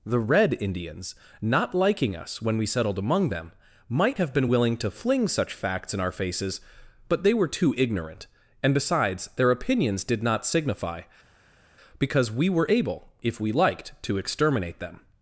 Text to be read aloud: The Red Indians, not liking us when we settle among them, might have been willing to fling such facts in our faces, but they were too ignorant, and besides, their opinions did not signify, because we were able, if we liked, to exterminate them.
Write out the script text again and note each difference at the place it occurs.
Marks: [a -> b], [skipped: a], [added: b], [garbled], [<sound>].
The Red Indians, not liking us when we [settle -> settled] among them, might have been willing to fling such facts in our faces, but they were too ignorant, and besides, their opinions did not signify, because we were able, if we liked, to exterminate them.